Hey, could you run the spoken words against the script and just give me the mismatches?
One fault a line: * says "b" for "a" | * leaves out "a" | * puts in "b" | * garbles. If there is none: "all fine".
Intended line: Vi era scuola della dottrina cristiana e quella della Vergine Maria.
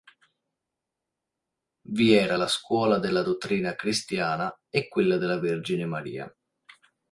* puts in "la"